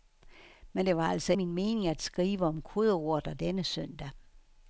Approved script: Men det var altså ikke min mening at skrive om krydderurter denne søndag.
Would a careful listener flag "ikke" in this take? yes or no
yes